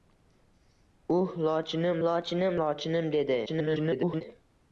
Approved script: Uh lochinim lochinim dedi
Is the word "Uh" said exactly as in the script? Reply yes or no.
yes